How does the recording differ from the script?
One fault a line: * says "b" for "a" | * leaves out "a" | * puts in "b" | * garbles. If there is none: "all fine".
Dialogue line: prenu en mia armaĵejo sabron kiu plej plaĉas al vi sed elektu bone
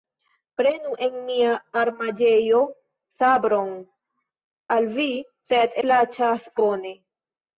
* leaves out "kiu plej plaĉas"
* says "plaĉas" for "elektu"